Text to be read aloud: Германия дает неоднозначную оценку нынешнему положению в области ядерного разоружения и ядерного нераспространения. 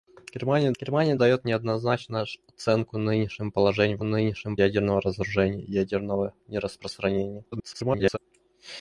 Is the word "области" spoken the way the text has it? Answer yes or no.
no